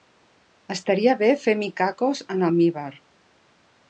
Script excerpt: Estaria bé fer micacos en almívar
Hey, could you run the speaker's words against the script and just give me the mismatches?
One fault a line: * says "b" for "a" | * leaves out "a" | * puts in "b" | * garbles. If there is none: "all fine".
all fine